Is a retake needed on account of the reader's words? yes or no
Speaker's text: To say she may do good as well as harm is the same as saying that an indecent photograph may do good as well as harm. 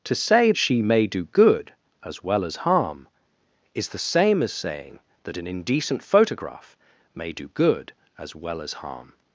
no